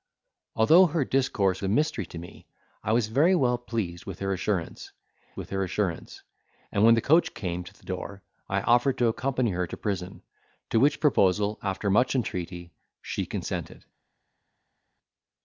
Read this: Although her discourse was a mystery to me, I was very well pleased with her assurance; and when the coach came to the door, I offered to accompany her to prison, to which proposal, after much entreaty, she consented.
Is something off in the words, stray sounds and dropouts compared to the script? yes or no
yes